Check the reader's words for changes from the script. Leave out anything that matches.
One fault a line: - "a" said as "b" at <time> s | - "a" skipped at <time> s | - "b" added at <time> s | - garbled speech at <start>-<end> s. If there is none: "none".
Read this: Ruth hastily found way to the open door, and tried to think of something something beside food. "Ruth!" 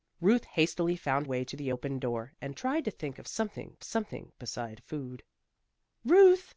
none